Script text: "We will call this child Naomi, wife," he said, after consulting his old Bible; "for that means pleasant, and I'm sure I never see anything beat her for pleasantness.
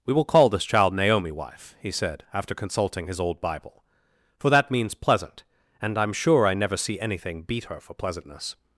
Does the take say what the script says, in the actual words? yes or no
yes